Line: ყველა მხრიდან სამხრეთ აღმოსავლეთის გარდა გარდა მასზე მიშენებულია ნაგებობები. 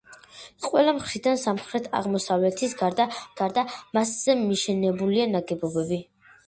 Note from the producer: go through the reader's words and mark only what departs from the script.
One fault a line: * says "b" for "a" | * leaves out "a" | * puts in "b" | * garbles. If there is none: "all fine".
all fine